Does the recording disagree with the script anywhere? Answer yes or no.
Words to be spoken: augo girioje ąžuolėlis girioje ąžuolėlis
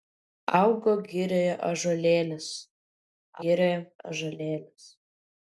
no